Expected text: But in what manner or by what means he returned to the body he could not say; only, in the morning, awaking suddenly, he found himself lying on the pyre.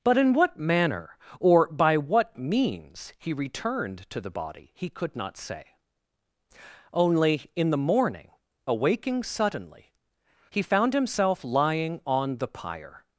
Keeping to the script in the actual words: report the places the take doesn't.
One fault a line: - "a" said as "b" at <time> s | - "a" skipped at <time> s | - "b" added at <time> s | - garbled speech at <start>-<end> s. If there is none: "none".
none